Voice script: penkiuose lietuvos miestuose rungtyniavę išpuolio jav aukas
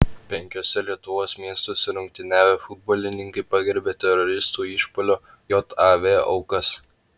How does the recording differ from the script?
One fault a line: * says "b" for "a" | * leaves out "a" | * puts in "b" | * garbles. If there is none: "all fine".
* puts in "futbolininkai pagerbė teroristų"